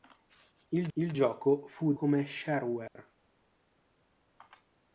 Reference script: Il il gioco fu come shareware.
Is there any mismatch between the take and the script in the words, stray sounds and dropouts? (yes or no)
yes